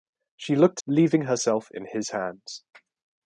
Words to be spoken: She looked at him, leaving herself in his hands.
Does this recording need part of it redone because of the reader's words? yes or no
yes